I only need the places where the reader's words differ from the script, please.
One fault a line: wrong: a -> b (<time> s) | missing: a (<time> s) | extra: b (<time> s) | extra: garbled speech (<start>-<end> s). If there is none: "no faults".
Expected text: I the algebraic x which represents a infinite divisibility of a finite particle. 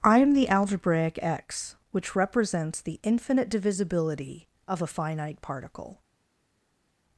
extra: am (0.2 s)
wrong: a -> the (2.8 s)